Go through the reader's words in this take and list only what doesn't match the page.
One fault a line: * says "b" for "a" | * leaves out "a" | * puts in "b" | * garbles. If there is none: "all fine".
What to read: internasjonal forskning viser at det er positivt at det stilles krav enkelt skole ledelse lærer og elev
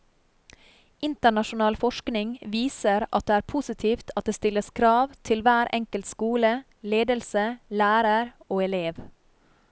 * puts in "til hver"